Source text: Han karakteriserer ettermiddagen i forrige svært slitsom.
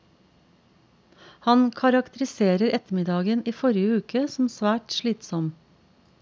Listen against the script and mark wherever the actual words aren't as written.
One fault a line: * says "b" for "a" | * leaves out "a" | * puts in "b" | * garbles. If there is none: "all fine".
* puts in "uke som"